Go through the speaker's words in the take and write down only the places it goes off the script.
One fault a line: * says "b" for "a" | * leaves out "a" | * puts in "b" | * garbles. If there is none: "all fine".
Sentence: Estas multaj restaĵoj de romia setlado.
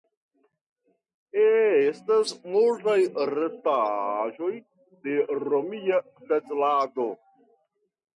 all fine